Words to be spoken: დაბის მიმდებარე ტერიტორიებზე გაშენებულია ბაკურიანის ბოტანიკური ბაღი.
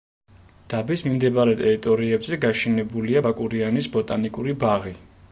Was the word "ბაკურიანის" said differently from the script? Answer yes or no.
no